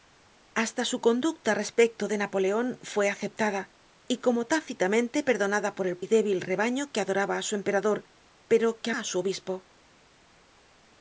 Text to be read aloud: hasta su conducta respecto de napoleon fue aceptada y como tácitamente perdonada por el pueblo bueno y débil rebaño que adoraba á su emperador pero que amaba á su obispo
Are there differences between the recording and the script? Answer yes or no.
yes